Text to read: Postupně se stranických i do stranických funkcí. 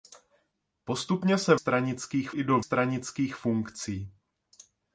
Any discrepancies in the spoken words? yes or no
no